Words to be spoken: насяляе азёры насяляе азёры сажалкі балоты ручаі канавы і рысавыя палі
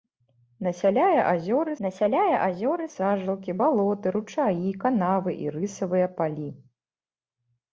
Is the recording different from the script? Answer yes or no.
no